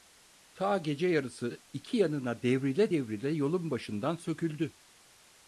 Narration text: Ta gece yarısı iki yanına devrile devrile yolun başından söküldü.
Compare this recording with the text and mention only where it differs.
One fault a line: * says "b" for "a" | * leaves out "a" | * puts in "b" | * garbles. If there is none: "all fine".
all fine